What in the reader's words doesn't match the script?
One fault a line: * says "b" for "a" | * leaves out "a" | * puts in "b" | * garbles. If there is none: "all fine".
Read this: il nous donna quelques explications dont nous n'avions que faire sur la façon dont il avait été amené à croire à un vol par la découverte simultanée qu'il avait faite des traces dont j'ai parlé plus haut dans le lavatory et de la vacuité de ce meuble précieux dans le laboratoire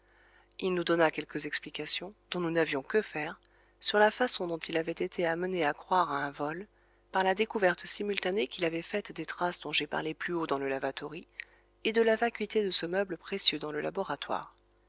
all fine